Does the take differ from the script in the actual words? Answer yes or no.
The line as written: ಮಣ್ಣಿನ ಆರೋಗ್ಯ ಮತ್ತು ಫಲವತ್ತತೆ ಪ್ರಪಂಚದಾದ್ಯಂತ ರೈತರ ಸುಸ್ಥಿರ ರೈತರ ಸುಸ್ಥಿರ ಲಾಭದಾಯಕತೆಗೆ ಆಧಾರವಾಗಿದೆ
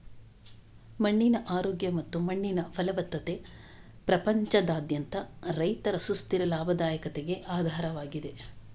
yes